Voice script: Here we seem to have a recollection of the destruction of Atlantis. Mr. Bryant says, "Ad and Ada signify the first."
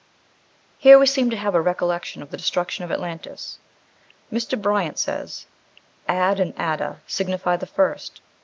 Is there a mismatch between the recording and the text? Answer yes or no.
no